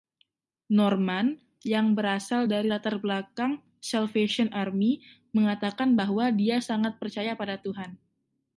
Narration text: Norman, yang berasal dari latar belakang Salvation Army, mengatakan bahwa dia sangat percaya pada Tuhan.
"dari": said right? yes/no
yes